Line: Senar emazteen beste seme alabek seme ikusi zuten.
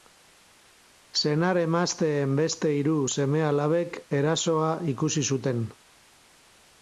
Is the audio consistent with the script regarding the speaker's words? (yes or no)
no